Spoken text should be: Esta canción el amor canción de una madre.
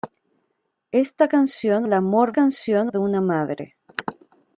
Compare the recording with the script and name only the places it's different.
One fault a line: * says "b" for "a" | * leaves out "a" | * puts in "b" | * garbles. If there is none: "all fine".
all fine